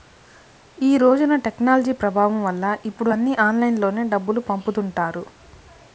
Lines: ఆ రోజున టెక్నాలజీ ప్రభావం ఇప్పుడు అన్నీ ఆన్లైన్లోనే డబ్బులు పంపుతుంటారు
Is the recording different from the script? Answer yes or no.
yes